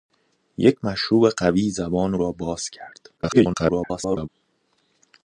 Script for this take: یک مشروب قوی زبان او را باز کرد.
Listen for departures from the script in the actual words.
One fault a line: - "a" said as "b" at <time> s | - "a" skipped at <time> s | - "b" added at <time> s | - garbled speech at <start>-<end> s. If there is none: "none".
- "او" skipped at 2.1 s
- garbled speech at 3.2-4.3 s